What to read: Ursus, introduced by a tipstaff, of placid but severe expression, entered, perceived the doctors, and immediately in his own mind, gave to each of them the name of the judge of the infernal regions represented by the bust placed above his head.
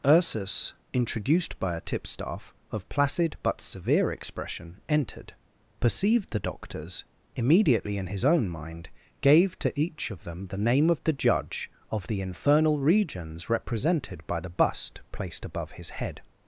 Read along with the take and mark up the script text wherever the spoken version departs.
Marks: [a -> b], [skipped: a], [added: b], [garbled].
Ursus, introduced by a tipstaff, of placid but severe expression, entered, perceived the doctors, [skipped: and] immediately in his own mind, gave to each of them the name of the judge of the infernal regions represented by the bust placed above his head.